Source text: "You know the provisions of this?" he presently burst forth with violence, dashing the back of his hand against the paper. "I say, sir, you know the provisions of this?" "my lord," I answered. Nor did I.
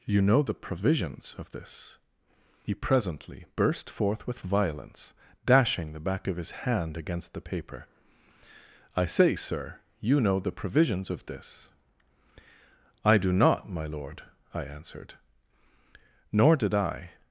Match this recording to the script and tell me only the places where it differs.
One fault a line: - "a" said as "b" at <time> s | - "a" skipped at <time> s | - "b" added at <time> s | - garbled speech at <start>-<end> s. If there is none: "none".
- "I do not" added at 13.0 s